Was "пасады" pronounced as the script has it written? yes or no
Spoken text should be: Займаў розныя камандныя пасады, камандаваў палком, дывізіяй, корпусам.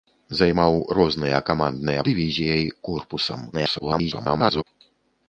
no